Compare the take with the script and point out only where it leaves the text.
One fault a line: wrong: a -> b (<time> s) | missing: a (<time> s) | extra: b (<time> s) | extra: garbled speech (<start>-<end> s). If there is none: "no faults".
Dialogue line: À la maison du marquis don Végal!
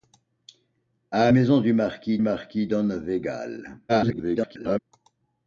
missing: la (1.3 s)
extra: marquis (2.2 s)
extra: garbled speech (3.9-4.8 s)